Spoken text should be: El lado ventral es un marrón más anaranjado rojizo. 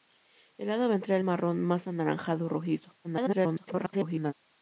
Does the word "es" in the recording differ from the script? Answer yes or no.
yes